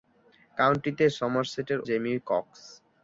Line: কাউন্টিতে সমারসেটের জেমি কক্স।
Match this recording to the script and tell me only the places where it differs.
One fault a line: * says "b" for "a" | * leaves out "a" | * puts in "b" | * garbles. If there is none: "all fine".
all fine